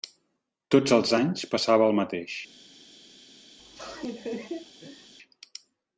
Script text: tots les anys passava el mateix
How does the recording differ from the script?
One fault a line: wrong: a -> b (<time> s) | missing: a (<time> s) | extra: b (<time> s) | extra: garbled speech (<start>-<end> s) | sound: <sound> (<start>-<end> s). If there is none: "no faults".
wrong: les -> els (1.0 s)
sound: laugh (3.6-5.1 s)